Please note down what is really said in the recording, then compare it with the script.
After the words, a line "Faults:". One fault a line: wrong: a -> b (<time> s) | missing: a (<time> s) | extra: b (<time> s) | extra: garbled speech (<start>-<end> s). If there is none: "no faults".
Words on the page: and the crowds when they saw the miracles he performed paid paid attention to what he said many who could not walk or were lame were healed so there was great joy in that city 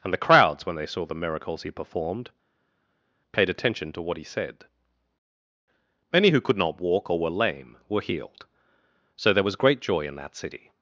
and the crowds when they saw the miracles he performed paid attention to what he said many who could not walk or were lame were healed so there was great joy in that city
Faults:
missing: paid (3.5 s)